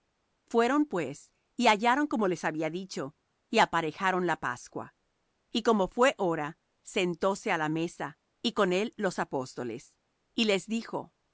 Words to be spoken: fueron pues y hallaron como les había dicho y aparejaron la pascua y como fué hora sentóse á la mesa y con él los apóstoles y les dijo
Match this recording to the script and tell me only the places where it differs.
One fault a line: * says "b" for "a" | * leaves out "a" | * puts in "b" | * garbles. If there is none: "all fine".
all fine